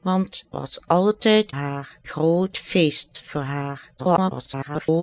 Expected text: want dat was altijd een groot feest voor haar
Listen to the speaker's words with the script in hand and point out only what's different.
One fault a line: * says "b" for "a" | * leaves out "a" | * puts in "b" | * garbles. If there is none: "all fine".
* leaves out "dat"
* says "haar" for "een"
* garbles